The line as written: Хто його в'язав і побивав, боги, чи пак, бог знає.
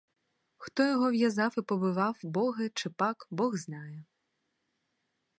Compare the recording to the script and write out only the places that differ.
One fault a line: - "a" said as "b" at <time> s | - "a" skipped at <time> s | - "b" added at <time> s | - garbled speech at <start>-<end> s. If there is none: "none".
none